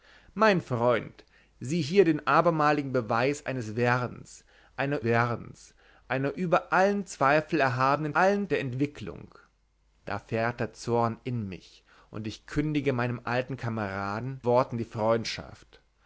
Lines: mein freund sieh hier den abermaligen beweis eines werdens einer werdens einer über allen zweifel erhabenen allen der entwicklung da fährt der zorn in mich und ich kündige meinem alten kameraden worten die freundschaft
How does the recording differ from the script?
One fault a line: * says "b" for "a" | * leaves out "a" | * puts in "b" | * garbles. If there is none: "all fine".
all fine